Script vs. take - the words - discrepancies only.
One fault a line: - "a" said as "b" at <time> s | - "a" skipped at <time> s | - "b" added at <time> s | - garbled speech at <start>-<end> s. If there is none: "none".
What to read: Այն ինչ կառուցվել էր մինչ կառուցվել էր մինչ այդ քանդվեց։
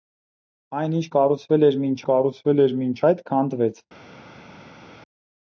none